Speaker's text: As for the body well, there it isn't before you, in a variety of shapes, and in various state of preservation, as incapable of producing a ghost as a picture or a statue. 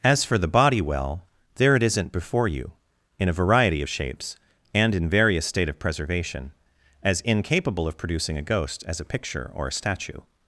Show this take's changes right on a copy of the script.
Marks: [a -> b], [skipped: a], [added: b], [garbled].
As for the body well, there it isn't before you, in a variety of shapes, and in various state of preservation, as incapable of producing a ghost as a picture or a statue.